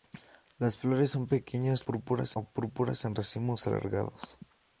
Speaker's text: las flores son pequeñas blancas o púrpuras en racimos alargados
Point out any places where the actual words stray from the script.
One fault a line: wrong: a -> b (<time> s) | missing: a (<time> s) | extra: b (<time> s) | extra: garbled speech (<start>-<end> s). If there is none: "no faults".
wrong: blancas -> púrpuras (1.8 s)